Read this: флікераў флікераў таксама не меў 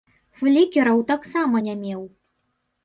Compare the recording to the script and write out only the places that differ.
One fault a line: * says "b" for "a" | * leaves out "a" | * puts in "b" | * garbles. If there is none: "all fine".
* leaves out "флікераў"